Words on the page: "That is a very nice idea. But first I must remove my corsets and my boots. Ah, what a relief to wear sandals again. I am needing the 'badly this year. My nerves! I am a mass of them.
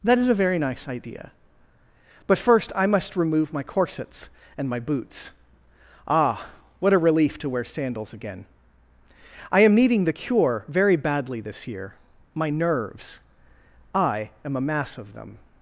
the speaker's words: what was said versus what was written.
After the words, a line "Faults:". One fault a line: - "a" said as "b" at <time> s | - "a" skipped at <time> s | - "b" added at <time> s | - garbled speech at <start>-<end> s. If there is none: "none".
"That is a very nice idea. But first I must remove my corsets and my boots. Ah, what a relief to wear sandals again. I am needing the 'cure' very badly this year. My nerves! I am a mass of them.
Faults:
- "cure very" added at 10.1 s